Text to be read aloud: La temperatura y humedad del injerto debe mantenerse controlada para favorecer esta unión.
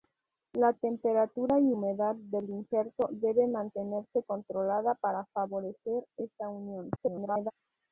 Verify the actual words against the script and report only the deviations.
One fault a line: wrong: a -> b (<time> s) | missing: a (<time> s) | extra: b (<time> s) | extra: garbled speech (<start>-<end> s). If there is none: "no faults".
extra: garbled speech (7.0-7.5 s)